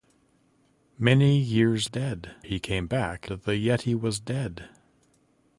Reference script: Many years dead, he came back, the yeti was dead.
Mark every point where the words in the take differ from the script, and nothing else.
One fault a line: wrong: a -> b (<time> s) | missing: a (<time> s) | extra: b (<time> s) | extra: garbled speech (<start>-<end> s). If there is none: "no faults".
no faults